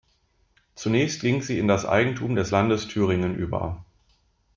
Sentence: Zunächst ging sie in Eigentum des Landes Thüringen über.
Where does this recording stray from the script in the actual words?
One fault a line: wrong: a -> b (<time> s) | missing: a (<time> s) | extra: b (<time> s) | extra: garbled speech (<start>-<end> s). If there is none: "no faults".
extra: das (1.7 s)